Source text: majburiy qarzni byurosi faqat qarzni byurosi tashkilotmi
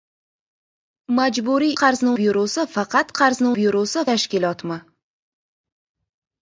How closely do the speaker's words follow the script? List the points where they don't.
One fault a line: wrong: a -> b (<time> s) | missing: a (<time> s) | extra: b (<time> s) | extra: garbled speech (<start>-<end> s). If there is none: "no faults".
no faults